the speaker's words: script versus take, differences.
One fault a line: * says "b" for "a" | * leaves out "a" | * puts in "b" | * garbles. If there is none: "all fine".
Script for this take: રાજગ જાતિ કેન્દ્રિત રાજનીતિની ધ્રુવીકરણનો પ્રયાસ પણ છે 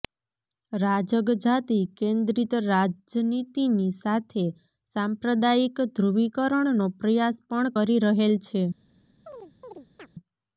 * puts in "સાથે સાંપ્રદાયિક"
* puts in "કરી રહેલ"